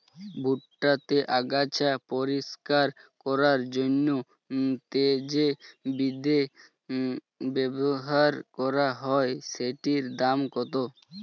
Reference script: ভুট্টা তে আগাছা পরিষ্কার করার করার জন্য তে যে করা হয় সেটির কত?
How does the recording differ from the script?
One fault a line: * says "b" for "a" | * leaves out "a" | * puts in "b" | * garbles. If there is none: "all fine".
* leaves out "করার"
* puts in "বিদে ব্যবহার"
* puts in "দাম"